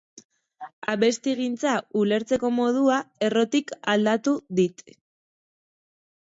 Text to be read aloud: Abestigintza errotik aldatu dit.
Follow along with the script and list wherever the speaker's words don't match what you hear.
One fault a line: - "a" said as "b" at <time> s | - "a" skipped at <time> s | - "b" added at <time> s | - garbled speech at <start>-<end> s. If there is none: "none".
- "ulertzeko modua" added at 2.0 s